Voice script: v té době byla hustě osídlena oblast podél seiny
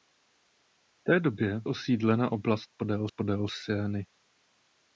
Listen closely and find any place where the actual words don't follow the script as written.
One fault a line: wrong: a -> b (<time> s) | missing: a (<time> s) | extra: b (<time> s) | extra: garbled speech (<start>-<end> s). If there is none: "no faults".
missing: byla hustě (1.6 s)
extra: podél (3.1 s)